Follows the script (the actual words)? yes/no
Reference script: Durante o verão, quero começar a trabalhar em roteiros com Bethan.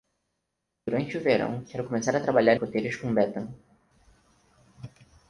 no